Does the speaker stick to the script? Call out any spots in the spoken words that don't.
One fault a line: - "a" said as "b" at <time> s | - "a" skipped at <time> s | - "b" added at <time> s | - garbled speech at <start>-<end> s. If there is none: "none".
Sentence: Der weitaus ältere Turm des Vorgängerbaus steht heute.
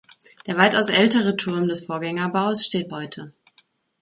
none